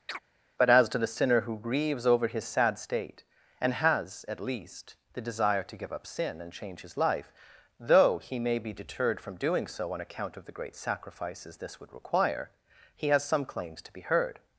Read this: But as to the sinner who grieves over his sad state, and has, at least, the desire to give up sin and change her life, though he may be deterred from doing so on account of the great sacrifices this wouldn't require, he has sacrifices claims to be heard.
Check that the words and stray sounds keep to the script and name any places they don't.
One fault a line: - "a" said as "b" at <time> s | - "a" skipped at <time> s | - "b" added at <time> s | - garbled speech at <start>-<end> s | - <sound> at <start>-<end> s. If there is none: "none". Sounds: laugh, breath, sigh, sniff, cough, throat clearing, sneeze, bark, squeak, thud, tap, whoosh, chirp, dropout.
- chirp at 0.1-0.2 s
- "her" said as "his" at 6.8 s
- "wouldn't" said as "would" at 11.8 s
- "sacrifices" said as "some" at 13.2 s